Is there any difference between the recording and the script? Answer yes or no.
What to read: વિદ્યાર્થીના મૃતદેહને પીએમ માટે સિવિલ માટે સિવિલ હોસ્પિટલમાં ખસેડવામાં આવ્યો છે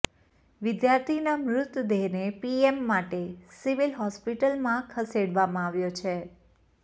yes